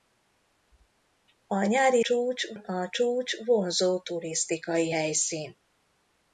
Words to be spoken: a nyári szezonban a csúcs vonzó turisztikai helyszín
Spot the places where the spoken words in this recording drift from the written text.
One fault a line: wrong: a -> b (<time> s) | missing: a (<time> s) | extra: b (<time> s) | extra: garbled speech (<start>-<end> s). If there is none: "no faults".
wrong: szezonban -> csúcs (2.0 s)